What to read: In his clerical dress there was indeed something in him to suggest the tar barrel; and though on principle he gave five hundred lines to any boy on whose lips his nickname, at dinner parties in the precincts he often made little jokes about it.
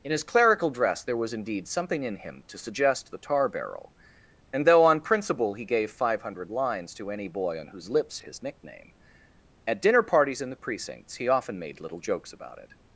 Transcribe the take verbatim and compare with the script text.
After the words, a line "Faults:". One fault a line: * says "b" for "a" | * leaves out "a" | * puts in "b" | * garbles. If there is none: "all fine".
In his clerical dress there was indeed something in him to suggest the tar barrel; and though on principle he gave five hundred lines to any boy on whose lips his nickname, at dinner parties in the precincts he often made little jokes about it.
Faults:
all fine